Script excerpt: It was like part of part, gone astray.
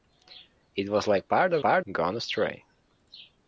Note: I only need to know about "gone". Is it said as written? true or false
true